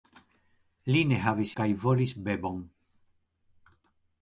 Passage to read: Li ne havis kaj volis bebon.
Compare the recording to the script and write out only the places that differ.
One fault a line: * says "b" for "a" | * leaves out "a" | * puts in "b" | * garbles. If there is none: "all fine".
all fine